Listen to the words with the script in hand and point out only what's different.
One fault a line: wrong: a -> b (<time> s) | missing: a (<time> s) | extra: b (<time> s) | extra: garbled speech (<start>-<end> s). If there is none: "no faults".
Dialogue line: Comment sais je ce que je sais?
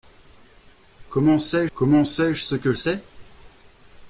extra: comment sais (1.8 s)
missing: je (2.7 s)